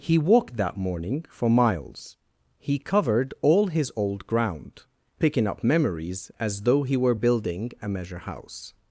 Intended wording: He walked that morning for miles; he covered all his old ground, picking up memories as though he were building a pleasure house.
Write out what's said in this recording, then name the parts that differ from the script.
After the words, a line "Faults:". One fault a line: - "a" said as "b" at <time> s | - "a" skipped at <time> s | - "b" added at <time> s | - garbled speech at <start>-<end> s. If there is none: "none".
He walked that morning for miles; he covered all his old ground, picking up memories as though he were building a measure house.
Faults:
- "pleasure" said as "measure" at 7.9 s